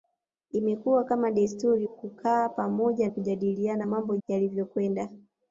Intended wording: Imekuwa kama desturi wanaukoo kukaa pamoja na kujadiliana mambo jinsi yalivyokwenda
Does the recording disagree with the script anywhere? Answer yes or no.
yes